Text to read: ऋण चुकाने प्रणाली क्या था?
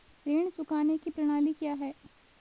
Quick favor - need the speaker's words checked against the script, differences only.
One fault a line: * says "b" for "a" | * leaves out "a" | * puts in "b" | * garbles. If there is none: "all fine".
* puts in "की"
* says "है" for "था"